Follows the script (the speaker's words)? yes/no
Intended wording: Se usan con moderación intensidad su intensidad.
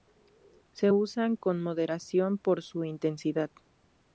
no